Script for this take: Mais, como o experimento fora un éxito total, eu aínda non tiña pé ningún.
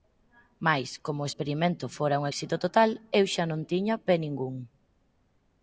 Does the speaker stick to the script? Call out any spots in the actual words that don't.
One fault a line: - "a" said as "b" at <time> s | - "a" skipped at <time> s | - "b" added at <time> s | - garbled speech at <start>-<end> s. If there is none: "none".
- "aínda" said as "xa" at 3.3 s